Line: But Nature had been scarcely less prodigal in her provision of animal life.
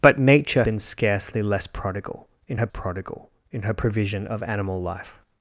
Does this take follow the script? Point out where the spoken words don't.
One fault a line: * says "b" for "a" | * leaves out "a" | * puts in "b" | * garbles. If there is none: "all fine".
* leaves out "had"
* puts in "prodigal in her"